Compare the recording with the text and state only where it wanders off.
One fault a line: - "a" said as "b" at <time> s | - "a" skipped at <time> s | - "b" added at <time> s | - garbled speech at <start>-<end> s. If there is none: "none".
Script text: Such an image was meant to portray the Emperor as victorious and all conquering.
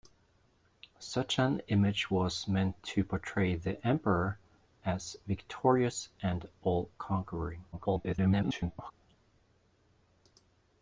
- garbled speech at 7.7-8.9 s